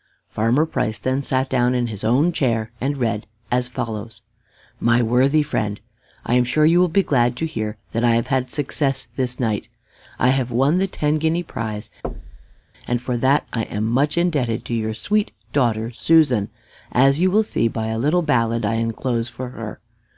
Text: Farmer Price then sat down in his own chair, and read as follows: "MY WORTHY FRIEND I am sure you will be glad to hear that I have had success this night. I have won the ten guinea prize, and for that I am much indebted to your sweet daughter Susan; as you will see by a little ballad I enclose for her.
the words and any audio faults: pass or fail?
fail